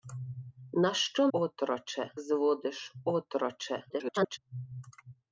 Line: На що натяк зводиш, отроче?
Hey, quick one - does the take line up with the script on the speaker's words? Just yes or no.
no